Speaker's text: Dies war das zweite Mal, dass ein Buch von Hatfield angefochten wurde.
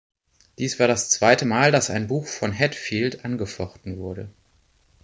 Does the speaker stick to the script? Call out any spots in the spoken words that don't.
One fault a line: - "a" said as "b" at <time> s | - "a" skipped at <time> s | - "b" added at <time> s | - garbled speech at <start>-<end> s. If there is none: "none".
none